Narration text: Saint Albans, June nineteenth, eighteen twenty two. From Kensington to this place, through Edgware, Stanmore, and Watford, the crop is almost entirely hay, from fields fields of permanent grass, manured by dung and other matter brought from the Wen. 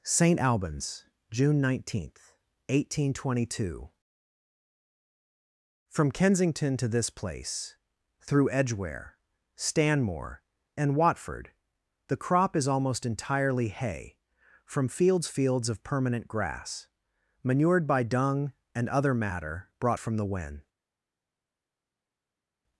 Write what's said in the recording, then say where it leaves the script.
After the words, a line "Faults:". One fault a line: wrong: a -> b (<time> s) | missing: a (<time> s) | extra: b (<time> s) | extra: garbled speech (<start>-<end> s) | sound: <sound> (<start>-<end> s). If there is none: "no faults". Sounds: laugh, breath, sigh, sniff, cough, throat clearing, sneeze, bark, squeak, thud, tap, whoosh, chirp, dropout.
Saint Albans, June nineteenth, eighteen twenty two. From Kensington to this place, through Edgware, Stanmore, and Watford, the crop is almost entirely hay, from fields fields of permanent grass, manured by dung and other matter brought from the Wen.
Faults:
no faults